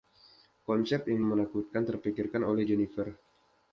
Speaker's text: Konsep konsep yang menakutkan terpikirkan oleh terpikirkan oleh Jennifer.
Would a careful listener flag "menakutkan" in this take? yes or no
no